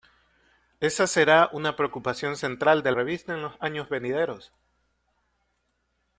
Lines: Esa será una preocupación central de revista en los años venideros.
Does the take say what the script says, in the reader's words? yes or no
yes